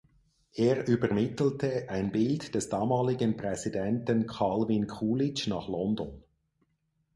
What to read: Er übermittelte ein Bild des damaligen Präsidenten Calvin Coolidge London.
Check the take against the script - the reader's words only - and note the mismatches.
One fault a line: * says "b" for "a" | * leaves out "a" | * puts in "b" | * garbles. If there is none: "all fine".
* puts in "nach"